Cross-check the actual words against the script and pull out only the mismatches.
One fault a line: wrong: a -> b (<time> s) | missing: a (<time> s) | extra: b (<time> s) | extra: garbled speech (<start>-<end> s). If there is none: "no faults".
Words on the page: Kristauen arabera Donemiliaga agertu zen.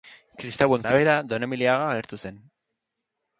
no faults